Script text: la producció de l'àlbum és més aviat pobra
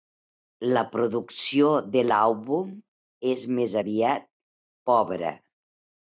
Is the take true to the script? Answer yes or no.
yes